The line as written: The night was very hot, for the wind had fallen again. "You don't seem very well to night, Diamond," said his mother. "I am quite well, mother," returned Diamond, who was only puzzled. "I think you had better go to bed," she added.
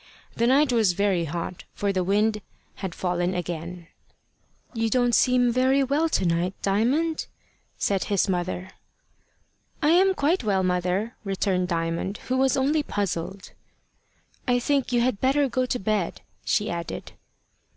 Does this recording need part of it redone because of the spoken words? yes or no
no